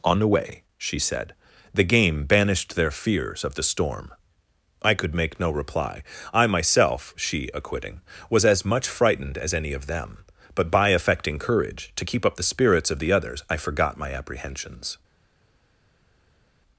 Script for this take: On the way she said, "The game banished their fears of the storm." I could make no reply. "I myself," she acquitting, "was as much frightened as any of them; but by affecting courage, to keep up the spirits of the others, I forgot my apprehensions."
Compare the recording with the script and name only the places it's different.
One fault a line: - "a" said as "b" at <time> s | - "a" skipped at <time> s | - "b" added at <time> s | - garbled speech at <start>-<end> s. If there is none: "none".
none